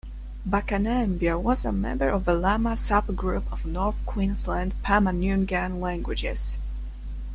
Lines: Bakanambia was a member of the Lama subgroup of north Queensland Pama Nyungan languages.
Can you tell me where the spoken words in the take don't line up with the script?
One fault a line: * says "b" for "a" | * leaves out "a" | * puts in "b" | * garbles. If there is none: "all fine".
all fine